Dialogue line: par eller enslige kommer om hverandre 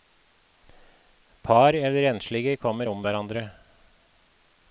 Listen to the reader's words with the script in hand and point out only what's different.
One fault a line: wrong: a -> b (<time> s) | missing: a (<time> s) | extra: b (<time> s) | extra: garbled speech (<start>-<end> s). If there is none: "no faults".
no faults